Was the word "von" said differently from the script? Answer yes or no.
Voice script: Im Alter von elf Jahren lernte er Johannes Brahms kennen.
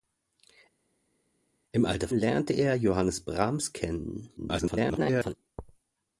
yes